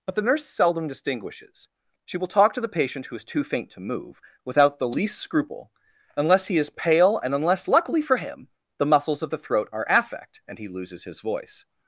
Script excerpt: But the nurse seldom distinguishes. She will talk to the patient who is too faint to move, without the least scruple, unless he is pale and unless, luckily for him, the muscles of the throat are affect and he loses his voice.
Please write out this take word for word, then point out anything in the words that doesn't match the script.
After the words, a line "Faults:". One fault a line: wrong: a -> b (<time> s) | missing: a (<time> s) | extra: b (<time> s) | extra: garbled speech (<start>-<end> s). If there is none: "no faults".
But the nurse seldom distinguishes. She will talk to the patient who is too faint to move, without the least scruple, unless he is pale and unless, luckily for him, the muscles of the throat are affect and he loses his voice.
Faults:
no faults